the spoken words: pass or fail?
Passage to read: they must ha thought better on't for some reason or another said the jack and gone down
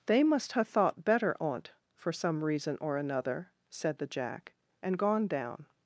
pass